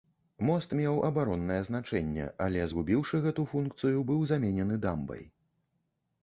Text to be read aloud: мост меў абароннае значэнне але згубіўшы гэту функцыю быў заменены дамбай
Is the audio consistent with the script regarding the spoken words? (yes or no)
yes